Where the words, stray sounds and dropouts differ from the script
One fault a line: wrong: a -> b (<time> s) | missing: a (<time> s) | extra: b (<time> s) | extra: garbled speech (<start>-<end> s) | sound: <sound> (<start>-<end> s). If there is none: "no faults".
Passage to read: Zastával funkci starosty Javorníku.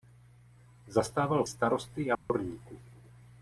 missing: funkci (1.4 s)
sound: dropout (2.1-2.3 s)